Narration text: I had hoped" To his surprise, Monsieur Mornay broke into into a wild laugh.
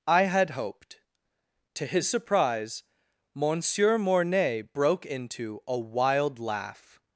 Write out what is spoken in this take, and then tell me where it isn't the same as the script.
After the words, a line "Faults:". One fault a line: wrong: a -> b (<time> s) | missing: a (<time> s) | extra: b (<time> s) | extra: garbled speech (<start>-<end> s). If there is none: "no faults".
I had hoped" To his surprise, Monsieur Mornay broke into a wild laugh.
Faults:
missing: into (5.6 s)